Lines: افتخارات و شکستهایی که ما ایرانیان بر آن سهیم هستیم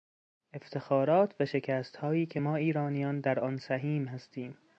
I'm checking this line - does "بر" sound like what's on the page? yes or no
no